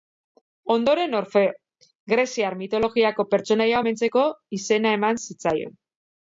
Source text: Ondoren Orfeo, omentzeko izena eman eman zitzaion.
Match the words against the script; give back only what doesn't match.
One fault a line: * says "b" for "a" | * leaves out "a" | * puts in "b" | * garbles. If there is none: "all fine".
* puts in "greziar mitologiako pertsonaia"
* leaves out "eman"